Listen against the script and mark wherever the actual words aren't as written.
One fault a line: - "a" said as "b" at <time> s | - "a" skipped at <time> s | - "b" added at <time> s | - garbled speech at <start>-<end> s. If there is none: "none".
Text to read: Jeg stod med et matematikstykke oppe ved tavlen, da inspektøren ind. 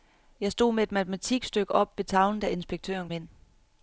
none